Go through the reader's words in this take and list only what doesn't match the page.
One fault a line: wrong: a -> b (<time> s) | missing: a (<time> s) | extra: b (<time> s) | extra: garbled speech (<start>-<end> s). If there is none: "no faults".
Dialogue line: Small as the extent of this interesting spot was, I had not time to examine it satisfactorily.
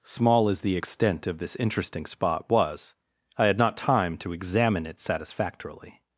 no faults